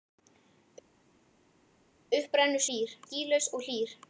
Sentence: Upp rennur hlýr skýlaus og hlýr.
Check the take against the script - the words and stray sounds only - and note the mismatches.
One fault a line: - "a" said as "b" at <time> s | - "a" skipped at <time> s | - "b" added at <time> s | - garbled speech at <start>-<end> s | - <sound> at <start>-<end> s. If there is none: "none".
none